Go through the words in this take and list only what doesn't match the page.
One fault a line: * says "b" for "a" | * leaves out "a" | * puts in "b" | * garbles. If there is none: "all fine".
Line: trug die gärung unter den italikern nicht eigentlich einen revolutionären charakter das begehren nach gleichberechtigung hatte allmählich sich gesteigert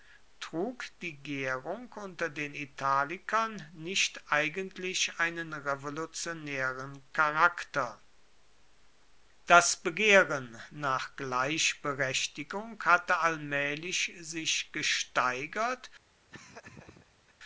all fine